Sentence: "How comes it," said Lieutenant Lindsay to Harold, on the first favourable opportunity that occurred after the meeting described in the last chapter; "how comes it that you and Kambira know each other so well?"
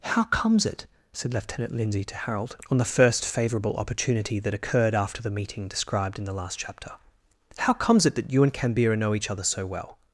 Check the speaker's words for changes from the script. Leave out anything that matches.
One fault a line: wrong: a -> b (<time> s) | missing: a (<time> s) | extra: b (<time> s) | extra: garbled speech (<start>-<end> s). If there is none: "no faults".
no faults